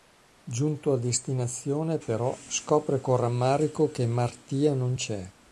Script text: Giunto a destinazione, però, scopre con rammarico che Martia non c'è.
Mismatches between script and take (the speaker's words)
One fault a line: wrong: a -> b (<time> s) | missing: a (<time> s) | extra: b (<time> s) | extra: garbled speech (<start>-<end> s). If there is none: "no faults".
no faults